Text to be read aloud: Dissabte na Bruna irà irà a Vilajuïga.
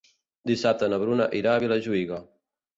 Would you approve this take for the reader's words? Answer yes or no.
no